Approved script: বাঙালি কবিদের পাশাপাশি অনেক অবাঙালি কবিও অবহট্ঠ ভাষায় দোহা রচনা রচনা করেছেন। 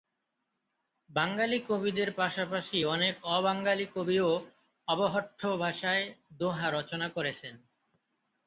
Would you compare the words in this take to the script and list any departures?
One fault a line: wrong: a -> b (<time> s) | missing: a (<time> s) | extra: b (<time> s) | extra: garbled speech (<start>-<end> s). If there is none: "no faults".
missing: রচনা (7.1 s)